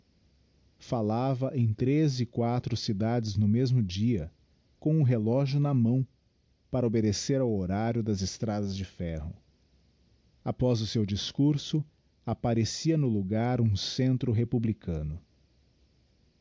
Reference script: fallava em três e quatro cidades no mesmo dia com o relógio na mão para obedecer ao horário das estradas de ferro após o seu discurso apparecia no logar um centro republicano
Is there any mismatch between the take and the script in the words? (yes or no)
no